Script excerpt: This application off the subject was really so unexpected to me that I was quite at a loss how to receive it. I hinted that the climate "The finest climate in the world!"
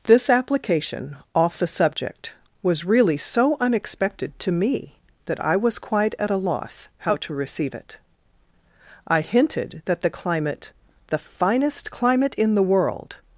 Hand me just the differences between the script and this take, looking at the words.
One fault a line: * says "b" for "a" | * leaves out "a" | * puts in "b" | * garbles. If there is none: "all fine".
all fine